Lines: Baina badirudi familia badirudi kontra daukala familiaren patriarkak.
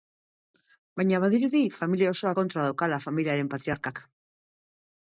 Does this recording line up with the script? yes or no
no